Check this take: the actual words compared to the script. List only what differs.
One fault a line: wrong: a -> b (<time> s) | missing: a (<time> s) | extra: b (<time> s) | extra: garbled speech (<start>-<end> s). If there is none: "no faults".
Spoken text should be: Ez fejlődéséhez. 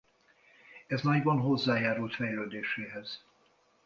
extra: nagyban hozzájárult (1.0 s)